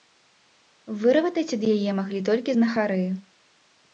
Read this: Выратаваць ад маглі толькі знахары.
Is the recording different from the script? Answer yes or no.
yes